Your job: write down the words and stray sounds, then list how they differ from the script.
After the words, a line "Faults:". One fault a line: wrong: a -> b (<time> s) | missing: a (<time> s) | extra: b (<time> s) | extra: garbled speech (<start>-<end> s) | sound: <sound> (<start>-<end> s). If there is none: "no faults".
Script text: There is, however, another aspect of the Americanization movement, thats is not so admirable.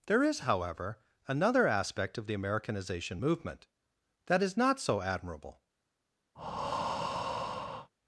There is, however, another aspect of the Americanization movement, that is not so admirable.
Faults:
wrong: thats -> that (4.3 s)
sound: breath (6.3-7.9 s)